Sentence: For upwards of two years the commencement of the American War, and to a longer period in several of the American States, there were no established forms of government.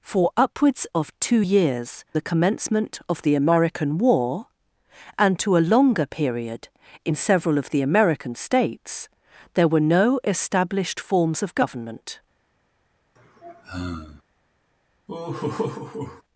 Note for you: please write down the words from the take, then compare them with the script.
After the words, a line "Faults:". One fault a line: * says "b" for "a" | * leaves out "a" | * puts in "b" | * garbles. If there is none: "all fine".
For upwards of two years the commencement of the American War, and to a longer period in several of the American States, there were no established forms of government.
Faults:
all fine